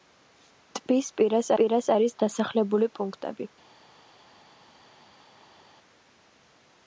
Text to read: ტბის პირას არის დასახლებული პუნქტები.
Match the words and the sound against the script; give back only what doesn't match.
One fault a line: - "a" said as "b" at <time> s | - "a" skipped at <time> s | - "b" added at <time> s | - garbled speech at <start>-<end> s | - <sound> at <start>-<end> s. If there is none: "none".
- "პირას" added at 1.6 s